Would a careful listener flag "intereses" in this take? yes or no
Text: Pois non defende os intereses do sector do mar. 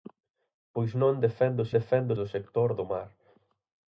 yes